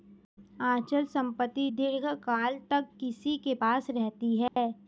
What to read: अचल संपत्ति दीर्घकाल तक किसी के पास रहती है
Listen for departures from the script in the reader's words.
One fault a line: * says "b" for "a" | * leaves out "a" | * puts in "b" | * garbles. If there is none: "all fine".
all fine